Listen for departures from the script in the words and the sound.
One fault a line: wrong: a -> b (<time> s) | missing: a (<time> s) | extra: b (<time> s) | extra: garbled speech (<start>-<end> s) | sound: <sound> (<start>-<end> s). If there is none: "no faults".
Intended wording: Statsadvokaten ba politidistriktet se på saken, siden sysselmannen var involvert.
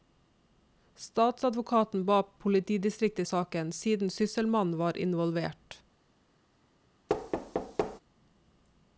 missing: se på (3.3 s)
sound: thud (7.1-8.0 s)